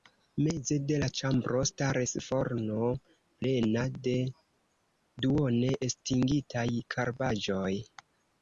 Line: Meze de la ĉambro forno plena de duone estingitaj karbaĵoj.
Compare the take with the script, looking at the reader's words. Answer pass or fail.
fail